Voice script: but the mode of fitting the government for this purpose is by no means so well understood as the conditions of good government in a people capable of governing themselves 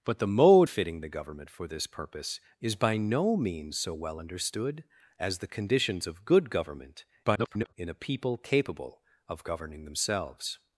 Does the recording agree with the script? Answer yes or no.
no